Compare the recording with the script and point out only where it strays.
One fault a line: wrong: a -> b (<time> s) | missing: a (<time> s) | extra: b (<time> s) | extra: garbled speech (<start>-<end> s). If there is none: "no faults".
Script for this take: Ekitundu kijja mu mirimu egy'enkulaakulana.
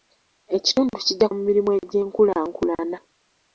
no faults